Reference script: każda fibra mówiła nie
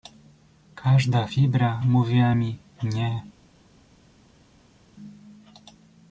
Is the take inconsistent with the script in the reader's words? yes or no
yes